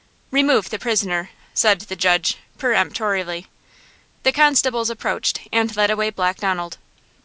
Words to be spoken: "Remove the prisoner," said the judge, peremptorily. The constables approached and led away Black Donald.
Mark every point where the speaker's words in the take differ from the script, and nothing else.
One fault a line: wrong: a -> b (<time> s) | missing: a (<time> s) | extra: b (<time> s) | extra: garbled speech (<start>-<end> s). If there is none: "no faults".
no faults